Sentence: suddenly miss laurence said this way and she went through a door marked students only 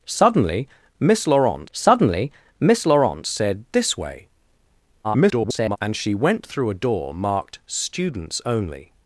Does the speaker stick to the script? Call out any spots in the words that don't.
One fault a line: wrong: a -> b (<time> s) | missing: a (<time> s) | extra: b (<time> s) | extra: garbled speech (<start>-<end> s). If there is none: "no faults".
extra: suddenly miss laurence (1.7 s)
extra: garbled speech (5.0-5.8 s)